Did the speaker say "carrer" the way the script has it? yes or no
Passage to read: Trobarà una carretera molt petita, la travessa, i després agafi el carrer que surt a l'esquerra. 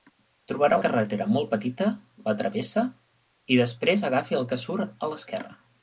no